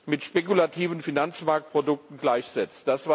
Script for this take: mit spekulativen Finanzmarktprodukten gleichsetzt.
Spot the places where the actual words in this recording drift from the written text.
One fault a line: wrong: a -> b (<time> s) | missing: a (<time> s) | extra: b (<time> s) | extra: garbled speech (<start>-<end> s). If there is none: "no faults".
no faults